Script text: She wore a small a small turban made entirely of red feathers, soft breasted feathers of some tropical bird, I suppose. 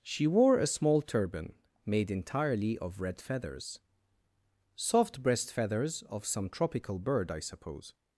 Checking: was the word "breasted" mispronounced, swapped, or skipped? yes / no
yes